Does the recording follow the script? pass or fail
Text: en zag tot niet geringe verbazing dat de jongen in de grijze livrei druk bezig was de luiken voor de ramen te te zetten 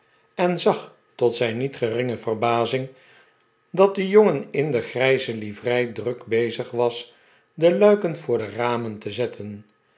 fail